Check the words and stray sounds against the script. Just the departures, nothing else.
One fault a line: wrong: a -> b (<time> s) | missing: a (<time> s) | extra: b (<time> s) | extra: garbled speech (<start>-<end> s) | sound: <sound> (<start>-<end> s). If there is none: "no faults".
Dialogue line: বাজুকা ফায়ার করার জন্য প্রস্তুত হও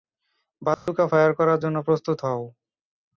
sound: dropout (0.7-0.9 s)